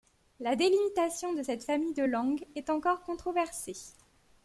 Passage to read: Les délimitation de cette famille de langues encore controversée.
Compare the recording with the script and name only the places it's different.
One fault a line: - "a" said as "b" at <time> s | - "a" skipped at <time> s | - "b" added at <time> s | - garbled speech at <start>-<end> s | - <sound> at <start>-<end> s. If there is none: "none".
- "Les" said as "La" at 0.4 s
- "est" added at 2.5 s